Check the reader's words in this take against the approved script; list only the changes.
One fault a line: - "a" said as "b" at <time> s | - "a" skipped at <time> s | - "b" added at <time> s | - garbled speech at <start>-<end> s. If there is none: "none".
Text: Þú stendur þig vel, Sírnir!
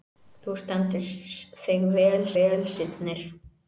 - "vel" added at 2.4 s